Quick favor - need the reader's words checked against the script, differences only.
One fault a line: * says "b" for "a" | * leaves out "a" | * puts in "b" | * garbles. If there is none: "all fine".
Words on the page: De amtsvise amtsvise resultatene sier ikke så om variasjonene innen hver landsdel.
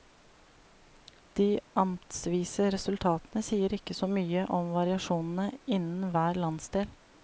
* leaves out "amtsvise"
* puts in "mye"